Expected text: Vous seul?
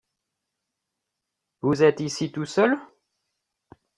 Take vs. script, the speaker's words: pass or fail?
fail